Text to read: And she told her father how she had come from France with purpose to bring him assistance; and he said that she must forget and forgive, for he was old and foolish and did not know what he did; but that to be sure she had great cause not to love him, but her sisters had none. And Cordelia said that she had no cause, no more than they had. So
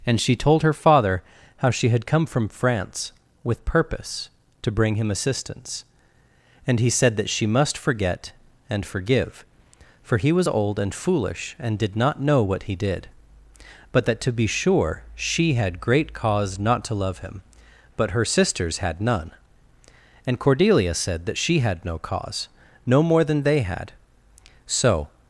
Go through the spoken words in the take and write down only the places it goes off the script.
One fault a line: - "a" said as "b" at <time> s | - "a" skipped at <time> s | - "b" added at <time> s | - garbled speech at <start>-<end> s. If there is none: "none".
none